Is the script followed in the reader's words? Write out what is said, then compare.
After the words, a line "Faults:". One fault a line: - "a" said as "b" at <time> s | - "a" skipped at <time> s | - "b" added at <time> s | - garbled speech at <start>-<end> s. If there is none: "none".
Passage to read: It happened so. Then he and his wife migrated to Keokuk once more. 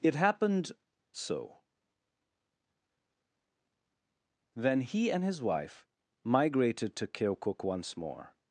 It happened so. Then he and his wife migrated to Keokuk once more.
Faults:
none